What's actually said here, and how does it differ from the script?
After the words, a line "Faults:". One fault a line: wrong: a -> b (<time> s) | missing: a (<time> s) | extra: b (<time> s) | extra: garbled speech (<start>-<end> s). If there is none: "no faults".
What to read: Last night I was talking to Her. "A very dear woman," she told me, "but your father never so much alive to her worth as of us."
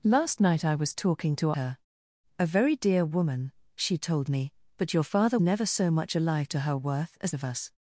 Last night I was talking to Her. "A very dear woman," she told me, "but your father never so much alive to her worth as of us."
Faults:
no faults